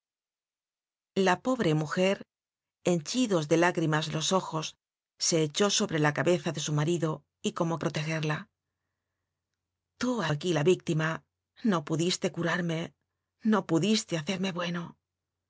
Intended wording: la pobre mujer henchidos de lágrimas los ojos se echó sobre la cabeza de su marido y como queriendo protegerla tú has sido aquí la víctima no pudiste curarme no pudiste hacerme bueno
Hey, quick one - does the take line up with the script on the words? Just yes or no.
no